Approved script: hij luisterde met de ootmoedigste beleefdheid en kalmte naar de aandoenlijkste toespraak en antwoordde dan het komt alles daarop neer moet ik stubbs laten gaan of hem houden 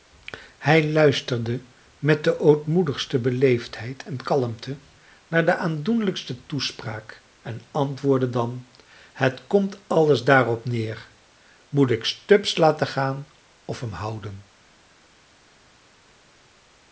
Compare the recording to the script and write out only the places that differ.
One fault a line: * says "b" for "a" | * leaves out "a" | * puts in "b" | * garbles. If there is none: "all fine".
all fine